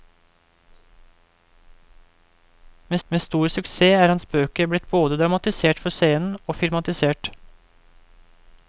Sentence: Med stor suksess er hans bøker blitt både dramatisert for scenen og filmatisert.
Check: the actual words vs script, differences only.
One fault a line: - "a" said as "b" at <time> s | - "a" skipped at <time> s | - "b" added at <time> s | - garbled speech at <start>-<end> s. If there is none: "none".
- "med" added at 3.1 s